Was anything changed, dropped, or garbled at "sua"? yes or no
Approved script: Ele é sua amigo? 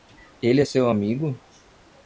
yes